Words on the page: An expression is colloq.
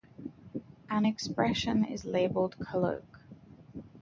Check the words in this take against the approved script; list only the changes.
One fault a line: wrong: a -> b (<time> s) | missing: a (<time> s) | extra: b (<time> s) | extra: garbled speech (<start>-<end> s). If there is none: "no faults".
extra: labeled (2.1 s)